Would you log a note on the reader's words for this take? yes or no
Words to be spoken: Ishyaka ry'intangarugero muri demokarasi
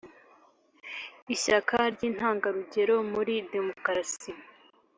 no